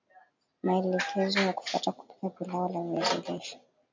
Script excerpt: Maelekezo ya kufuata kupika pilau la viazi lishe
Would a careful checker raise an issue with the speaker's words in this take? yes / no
no